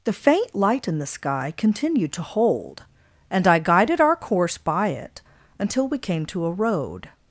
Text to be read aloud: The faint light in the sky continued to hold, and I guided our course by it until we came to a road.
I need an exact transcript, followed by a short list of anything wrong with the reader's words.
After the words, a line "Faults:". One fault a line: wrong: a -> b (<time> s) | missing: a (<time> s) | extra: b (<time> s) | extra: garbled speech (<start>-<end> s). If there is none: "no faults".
The faint light in the sky continued to hold, and I guided our course by it until we came to a road.
Faults:
no faults